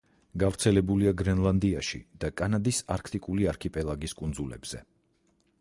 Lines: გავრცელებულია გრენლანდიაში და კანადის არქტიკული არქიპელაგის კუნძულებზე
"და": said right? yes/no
yes